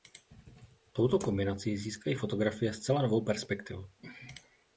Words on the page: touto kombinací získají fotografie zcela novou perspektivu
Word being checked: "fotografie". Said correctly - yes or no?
yes